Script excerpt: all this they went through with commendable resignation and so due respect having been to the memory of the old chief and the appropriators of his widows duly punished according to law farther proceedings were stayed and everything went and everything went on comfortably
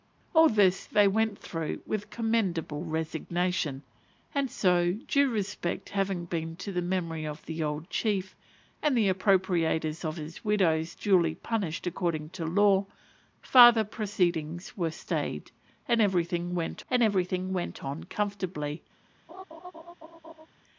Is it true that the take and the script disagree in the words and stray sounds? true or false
true